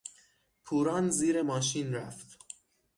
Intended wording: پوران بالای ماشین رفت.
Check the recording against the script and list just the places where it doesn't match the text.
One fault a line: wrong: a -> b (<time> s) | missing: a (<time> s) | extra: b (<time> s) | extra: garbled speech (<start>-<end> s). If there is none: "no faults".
wrong: بالای -> زیر (1.1 s)